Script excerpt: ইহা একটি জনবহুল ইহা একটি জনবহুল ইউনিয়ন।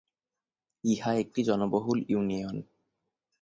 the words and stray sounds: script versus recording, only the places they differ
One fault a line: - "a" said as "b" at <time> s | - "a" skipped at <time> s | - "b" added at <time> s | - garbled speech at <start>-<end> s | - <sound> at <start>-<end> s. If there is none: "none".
- "ইহা একটি জনবহুল" skipped at 2.0 s